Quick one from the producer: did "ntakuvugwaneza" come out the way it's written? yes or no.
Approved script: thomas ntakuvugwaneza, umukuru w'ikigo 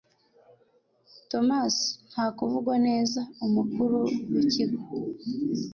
yes